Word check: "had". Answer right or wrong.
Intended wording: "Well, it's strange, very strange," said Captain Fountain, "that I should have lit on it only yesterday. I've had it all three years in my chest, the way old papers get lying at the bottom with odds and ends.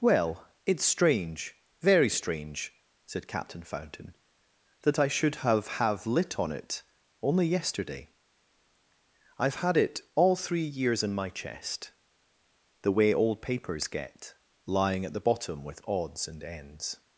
right